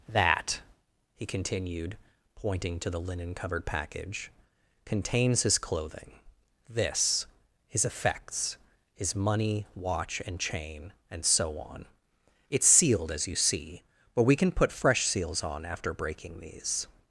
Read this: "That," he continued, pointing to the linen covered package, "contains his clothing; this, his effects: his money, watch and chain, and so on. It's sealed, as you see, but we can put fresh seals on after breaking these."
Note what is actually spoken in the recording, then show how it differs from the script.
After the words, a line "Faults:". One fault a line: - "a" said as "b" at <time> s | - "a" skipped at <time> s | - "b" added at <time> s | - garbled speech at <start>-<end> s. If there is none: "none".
"That," he continued, pointing to the linen covered package, "contains his clothing; this, his effects: his money, watch and chain, and so on. It's sealed, as you see, but we can put fresh seals on after breaking these."
Faults:
none